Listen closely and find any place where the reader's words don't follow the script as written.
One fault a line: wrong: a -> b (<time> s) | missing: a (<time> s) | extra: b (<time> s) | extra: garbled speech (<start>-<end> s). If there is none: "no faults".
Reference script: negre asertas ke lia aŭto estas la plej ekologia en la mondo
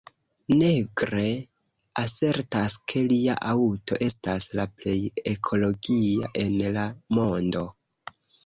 no faults